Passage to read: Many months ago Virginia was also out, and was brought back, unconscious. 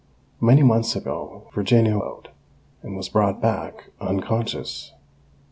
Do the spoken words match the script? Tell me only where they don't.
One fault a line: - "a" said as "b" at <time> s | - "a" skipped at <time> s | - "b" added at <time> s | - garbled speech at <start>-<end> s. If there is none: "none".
- "was also" skipped at 2.0 s